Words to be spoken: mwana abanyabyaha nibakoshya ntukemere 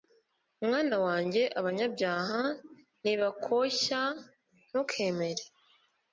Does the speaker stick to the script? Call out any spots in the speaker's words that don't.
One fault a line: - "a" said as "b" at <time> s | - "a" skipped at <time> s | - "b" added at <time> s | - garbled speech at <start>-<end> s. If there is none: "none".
- "wanjye" added at 1.1 s